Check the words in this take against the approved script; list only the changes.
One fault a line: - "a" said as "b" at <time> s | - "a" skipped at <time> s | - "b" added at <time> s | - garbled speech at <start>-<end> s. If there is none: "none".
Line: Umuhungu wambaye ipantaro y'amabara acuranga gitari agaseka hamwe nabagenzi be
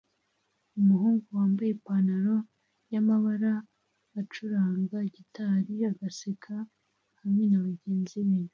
none